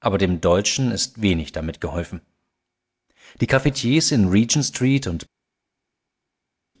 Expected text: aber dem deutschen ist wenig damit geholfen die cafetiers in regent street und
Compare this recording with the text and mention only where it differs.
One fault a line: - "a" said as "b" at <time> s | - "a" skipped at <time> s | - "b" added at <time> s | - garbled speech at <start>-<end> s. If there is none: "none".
none